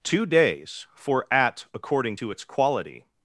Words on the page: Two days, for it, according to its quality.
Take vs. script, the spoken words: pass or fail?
fail